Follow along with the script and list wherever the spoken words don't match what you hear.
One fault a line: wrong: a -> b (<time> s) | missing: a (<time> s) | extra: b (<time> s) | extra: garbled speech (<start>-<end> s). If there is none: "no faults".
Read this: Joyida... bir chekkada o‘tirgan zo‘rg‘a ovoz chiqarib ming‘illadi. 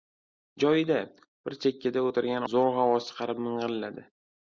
no faults